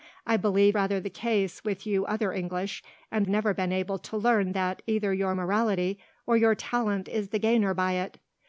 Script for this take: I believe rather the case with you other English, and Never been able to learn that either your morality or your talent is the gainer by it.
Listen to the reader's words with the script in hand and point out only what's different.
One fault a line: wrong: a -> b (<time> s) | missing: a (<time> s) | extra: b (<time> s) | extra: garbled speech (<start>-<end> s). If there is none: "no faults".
no faults